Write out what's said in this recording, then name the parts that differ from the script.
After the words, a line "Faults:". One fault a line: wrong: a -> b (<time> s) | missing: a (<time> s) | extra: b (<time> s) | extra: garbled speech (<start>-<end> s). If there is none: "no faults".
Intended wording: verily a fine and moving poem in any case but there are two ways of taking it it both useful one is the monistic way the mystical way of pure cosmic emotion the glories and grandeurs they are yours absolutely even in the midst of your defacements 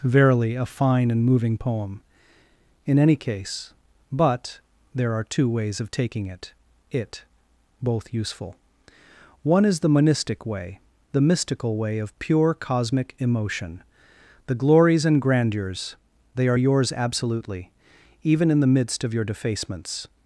verily a fine and moving poem in any case but there are two ways of taking it it both useful one is the monistic way the mystical way of pure cosmic emotion the glories and grandeurs they are yours absolutely even in the midst of your defacements
Faults:
no faults